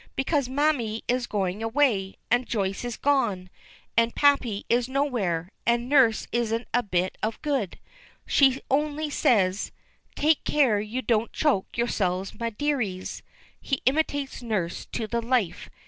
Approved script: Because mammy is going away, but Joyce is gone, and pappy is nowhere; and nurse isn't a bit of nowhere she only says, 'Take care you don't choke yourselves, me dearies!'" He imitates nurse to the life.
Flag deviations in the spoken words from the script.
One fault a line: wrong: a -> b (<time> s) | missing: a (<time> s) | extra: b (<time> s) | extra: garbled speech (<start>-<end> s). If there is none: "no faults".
wrong: but -> and (2.3 s)
wrong: nowhere -> good (7.4 s)